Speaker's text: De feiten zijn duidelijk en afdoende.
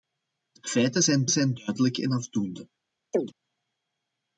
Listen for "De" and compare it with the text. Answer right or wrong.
right